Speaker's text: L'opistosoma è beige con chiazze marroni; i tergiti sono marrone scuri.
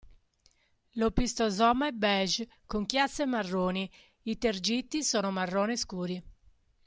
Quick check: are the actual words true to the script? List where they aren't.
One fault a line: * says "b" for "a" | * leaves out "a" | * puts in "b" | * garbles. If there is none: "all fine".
all fine